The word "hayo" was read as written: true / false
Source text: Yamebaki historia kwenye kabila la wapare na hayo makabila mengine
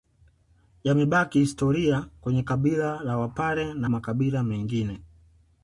false